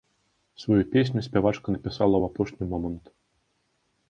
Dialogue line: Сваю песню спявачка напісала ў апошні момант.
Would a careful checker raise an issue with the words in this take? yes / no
no